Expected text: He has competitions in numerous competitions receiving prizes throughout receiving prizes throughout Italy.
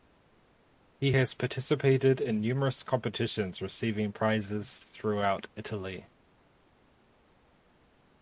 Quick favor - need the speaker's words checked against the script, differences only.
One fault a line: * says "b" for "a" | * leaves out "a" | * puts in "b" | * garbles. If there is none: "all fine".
* says "participated" for "competitions"
* leaves out "receiving prizes throughout"